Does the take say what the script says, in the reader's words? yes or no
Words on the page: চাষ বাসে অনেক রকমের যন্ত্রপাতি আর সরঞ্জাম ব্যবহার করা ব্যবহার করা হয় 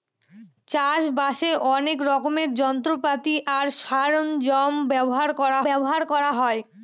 yes